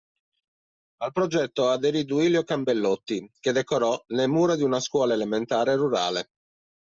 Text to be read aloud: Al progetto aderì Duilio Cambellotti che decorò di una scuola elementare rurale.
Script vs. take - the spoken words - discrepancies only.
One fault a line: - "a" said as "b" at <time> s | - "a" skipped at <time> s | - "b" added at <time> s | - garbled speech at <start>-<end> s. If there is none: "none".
- "le mura" added at 4.1 s